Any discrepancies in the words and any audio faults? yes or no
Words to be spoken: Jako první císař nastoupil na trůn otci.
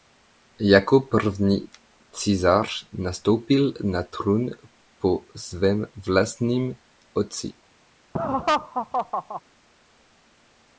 yes